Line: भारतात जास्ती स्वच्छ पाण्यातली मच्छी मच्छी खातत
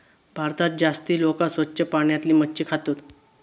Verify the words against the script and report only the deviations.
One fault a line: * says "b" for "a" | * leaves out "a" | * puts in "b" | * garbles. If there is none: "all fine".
* puts in "लोका"
* leaves out "मच्छी"